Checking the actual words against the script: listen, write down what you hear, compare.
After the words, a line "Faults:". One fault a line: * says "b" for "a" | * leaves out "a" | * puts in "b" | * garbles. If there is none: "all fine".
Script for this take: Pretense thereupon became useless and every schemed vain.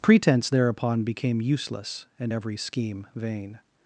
Pretense thereupon became useless and every scheme vain.
Faults:
* says "scheme" for "schemed"